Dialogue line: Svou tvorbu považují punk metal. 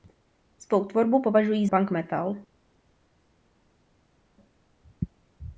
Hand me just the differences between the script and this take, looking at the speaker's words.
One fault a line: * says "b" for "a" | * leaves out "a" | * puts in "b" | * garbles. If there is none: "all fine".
all fine